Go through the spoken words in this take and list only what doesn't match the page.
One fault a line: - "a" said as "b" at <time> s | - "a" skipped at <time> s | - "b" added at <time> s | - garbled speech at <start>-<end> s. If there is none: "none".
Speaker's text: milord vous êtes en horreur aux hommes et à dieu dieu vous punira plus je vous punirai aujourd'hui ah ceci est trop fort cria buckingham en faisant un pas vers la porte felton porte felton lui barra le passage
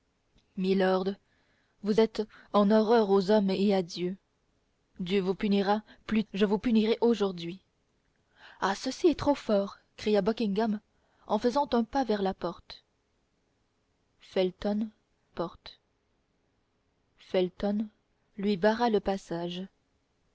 none